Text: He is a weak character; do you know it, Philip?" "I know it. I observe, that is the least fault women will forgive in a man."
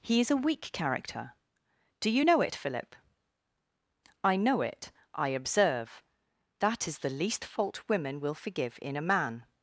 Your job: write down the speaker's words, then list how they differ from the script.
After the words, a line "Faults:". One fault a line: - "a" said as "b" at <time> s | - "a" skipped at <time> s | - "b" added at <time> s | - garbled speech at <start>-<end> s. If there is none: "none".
He is a weak character; do you know it, Philip?" "I know it. I observe, that is the least fault women will forgive in a man."
Faults:
none